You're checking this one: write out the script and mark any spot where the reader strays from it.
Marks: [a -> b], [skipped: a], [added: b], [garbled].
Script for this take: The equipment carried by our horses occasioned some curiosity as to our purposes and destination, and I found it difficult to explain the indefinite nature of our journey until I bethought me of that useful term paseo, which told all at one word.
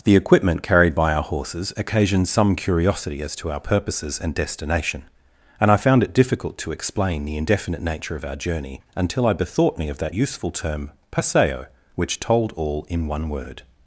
The equipment carried by our horses occasioned some curiosity as to our purposes and destination, and I found it difficult to explain the indefinite nature of our journey until I bethought me of that useful term paseo, which told all [at -> in] one word.